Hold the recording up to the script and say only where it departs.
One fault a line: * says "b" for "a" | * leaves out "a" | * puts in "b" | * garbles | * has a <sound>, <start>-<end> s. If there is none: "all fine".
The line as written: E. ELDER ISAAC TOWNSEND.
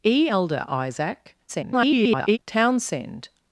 * garbles